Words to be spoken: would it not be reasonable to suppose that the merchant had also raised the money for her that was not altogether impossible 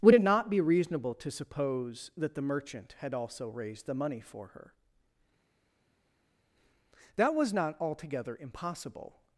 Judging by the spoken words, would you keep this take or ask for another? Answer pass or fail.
pass